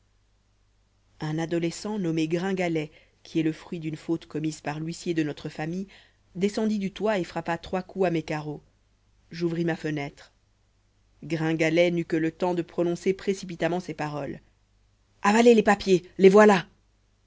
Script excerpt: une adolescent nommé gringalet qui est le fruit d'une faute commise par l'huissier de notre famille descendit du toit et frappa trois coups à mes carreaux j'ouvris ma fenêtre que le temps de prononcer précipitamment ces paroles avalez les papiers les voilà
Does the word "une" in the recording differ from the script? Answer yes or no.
yes